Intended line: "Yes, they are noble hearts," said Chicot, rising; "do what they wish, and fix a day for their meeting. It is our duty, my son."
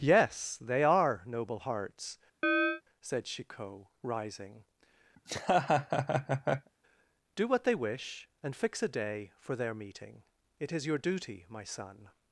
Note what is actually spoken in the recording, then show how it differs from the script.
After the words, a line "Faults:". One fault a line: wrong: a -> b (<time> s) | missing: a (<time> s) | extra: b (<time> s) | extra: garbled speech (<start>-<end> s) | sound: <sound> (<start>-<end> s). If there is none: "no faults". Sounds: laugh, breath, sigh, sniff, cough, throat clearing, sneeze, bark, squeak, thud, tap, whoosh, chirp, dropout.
"Yes, they are noble hearts," said Chicot, rising; "do what they wish, and fix a day for their meeting. It is your duty, my son."
Faults:
sound: chirp (2.4-2.8 s)
sound: laugh (5.2-6.7 s)
wrong: our -> your (10.9 s)